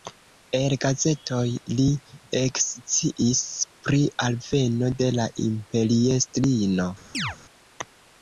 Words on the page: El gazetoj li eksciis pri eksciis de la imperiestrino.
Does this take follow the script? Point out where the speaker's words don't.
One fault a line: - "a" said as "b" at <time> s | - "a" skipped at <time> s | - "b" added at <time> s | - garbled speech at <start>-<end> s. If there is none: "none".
- "eksciis" said as "alveno" at 4.3 s